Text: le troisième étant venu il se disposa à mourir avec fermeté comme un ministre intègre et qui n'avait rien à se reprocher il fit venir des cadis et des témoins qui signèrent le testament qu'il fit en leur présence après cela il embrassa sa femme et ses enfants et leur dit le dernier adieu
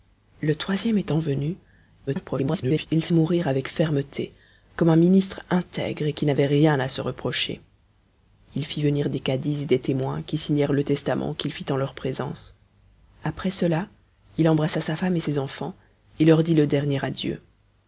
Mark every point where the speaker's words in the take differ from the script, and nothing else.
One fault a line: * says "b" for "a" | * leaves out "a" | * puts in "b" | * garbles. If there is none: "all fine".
* garbles
* leaves out "disposa"